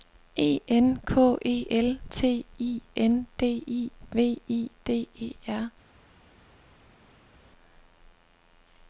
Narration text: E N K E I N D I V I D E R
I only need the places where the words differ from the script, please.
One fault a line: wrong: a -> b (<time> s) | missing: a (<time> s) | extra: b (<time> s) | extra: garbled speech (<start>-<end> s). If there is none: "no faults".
extra: L T (1.7 s)